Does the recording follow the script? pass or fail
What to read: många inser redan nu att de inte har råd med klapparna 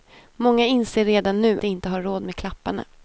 fail